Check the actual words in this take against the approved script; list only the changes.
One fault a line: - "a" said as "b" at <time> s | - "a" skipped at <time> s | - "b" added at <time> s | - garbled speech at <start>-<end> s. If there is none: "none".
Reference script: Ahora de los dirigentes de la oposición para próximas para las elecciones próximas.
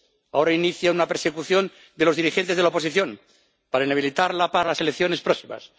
- "inicia una persecución" added at 0.5 s
- "próximas" said as "inhabilitarla" at 3.9 s